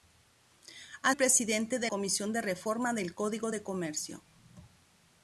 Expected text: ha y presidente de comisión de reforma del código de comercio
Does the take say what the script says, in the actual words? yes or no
yes